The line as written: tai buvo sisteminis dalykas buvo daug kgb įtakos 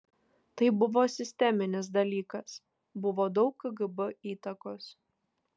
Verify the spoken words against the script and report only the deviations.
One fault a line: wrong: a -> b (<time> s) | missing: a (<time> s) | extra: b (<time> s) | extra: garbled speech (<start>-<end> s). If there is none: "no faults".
no faults